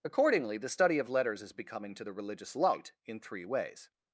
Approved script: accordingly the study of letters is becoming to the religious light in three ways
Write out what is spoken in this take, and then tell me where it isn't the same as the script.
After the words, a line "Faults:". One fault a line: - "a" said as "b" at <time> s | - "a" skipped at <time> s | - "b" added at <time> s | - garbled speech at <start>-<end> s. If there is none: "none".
accordingly the study of letters is becoming to the religious light in three ways
Faults:
none